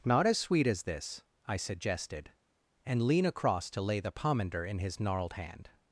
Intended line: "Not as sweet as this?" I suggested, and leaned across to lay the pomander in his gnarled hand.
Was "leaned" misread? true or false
true